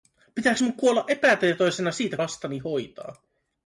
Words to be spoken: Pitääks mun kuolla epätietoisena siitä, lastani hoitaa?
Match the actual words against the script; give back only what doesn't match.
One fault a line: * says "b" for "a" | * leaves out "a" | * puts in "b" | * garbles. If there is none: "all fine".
all fine